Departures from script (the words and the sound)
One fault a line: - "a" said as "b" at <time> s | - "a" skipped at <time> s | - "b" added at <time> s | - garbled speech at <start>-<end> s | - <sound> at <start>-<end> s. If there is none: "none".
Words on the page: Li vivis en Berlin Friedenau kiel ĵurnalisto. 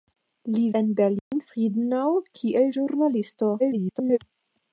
- "vivis" skipped at 0.6 s
- dropout at 1.2-1.3 s
- garbled speech at 3.6-4.2 s